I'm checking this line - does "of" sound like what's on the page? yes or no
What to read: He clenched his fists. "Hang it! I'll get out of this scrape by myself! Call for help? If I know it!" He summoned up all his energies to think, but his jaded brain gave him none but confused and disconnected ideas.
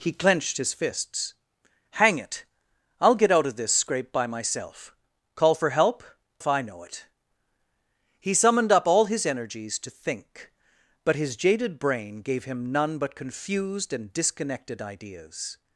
yes